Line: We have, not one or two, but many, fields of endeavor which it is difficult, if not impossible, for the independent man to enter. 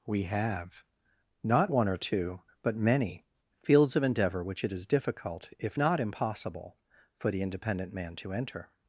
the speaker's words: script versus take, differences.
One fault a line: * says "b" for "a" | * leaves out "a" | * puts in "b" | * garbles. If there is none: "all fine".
all fine